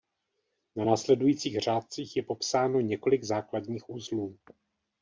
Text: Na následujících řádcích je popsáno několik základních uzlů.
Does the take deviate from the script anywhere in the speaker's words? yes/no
no